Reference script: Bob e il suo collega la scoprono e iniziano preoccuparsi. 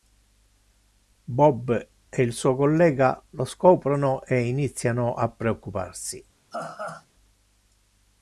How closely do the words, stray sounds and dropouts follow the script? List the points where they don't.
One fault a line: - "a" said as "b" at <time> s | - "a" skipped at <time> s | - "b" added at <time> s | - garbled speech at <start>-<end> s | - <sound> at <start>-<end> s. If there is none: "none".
- "la" said as "lo" at 3.3 s
- "a" added at 5.1 s
- laugh at 6.5-7.1 s